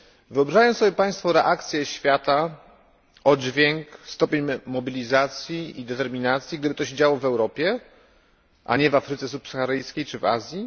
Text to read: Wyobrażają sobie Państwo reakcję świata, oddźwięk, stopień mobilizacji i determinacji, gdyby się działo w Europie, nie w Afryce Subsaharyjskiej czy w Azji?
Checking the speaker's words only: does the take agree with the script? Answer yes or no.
no